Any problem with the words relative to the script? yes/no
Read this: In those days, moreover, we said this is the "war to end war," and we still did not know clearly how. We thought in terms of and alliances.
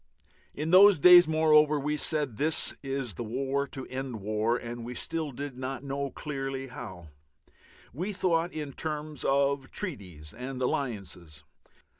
yes